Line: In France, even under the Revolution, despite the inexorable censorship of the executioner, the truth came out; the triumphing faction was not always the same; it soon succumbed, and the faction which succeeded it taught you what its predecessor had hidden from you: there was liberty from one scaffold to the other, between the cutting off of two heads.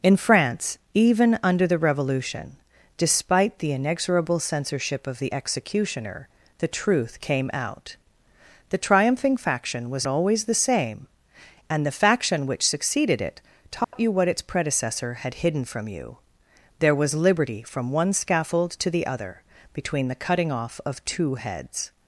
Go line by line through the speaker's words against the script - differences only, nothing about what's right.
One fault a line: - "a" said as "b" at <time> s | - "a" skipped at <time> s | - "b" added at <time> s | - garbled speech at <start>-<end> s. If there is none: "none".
- "not" skipped at 10.1 s
- "it soon succumbed" skipped at 11.1 s